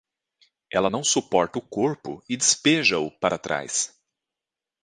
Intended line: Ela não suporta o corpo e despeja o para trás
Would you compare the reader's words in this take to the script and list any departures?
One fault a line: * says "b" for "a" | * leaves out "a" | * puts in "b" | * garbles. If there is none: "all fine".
all fine